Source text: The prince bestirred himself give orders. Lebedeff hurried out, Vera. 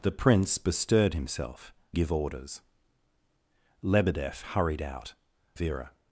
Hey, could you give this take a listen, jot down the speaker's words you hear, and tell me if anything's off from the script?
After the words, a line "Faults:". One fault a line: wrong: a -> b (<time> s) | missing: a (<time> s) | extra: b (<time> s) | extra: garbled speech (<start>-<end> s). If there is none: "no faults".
The prince bestirred himself give orders. Lebedeff hurried out, Vera.
Faults:
no faults